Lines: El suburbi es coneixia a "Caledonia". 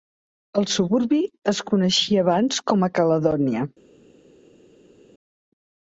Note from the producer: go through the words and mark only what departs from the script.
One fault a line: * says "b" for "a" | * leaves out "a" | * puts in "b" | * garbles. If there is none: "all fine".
* puts in "abans com"